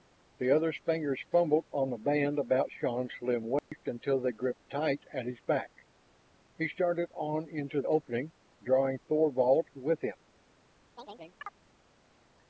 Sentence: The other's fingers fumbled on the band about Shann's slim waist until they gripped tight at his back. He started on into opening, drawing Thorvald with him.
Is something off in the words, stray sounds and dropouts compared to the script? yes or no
yes